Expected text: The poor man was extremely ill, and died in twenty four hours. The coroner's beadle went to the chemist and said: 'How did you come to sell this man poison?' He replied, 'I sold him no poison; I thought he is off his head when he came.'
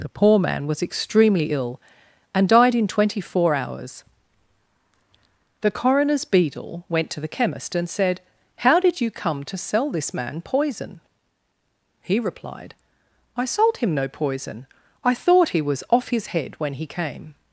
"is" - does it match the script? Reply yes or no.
no